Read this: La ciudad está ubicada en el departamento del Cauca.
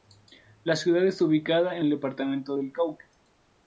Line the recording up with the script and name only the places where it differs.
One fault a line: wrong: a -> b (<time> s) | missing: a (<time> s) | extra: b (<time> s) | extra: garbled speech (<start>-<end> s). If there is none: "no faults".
no faults